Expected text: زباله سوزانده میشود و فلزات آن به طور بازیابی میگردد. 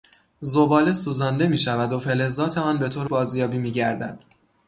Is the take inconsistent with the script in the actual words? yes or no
no